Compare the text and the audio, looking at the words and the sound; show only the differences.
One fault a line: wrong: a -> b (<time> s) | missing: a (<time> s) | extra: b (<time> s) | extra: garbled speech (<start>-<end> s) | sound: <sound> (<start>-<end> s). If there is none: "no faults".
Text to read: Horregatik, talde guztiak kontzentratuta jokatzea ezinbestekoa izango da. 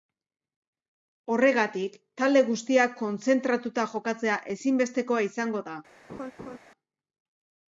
sound: laugh (6.1-6.6 s)